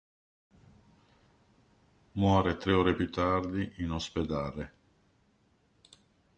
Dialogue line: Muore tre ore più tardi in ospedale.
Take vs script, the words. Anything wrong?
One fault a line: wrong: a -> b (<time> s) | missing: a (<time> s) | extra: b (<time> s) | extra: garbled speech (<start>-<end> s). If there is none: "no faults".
no faults